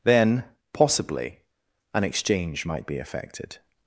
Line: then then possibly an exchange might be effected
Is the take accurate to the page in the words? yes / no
no